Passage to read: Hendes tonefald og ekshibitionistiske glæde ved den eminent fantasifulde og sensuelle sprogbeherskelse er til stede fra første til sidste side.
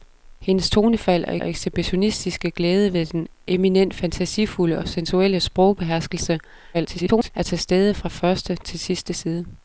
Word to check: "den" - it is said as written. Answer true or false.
true